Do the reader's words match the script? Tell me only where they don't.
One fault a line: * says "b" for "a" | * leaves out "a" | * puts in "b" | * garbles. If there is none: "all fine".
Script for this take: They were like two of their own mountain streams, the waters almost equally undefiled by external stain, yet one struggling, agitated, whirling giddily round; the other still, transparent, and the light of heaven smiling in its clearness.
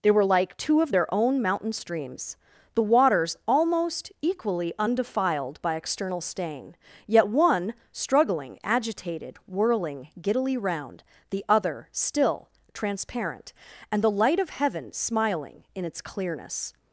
all fine